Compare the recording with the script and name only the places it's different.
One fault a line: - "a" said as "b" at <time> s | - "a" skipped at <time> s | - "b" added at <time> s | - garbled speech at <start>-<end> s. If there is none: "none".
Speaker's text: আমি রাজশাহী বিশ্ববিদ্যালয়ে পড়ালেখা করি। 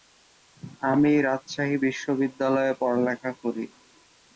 none